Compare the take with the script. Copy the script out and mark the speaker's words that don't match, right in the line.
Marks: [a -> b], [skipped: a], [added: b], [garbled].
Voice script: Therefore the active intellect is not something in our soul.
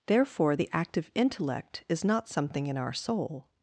Therefore the active intellect is not something in our soul.